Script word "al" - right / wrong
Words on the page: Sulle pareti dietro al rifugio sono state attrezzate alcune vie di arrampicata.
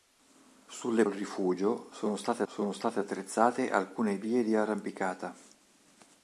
wrong